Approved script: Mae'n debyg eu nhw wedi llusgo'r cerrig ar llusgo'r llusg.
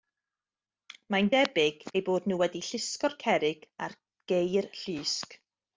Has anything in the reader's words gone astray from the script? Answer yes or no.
yes